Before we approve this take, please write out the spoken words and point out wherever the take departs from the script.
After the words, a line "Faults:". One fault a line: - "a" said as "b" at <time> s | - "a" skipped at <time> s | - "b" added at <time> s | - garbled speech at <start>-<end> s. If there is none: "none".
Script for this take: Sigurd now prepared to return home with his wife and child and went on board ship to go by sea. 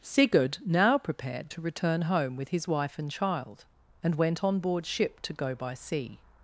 Sigurd now prepared to return home with his wife and child and went on board ship to go by sea.
Faults:
none